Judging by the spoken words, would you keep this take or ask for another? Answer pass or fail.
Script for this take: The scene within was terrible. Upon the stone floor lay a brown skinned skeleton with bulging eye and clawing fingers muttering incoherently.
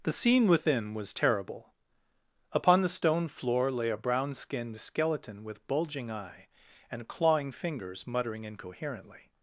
pass